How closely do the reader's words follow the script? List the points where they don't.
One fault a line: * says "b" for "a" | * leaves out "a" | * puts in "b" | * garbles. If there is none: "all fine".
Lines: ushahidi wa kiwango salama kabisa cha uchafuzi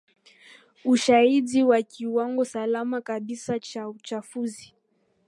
all fine